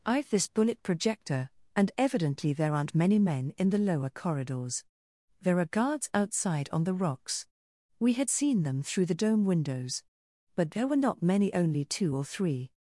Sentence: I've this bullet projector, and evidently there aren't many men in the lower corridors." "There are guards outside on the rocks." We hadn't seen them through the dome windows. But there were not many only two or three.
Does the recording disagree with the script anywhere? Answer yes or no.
yes